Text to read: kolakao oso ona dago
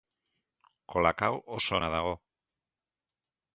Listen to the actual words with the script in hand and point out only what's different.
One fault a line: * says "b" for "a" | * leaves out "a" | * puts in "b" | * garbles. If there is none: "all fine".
all fine